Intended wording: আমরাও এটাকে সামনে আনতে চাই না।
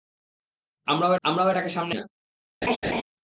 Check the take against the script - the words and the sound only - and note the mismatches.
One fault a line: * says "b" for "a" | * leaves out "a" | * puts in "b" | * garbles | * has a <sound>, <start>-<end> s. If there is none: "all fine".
* puts in "আমরাও"
* leaves out "আনতে চাই"
* has a laugh, 2.6-3.0 s